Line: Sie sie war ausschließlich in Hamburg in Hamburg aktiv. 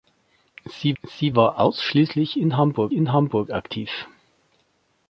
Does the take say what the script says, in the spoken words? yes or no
yes